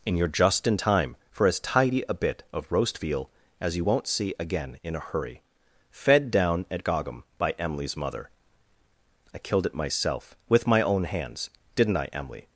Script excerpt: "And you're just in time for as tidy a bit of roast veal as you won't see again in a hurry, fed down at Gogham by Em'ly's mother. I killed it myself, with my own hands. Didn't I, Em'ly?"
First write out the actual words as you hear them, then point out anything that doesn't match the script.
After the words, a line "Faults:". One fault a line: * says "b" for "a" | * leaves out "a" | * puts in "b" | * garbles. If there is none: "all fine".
"And you're just in time for as tidy a bit of roast veal as you won't see again in a hurry, fed down at Gogham by Em'ly's mother. I killed it myself, with my own hands. Didn't I, Em'ly?"
Faults:
all fine